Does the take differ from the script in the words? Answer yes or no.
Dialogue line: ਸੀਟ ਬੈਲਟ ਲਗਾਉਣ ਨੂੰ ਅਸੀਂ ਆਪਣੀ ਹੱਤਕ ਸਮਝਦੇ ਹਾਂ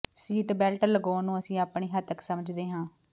no